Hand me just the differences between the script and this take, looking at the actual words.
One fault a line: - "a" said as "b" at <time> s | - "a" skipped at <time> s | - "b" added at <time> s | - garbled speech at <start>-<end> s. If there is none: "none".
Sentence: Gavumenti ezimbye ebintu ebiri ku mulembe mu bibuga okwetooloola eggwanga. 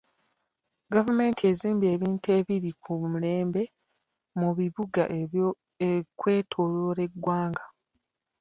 none